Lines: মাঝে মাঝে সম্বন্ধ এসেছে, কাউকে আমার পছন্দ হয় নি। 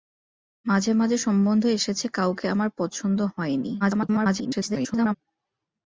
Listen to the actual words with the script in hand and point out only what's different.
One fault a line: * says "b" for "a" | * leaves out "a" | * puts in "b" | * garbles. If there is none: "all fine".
* garbles